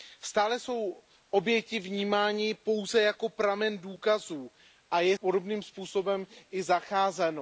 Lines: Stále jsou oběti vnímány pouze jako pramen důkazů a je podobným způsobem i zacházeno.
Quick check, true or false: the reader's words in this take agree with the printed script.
true